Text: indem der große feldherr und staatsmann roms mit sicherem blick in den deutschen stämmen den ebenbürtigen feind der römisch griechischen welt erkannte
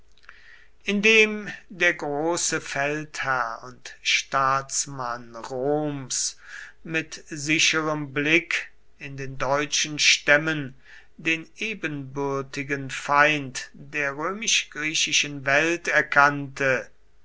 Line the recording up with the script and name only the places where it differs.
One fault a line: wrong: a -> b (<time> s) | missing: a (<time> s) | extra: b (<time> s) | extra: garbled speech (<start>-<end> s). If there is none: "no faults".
no faults